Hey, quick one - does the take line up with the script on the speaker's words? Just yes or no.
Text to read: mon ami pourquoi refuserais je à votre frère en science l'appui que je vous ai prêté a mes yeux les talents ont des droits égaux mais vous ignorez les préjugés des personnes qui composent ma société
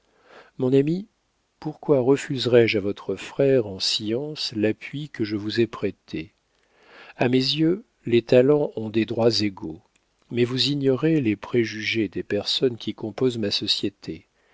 yes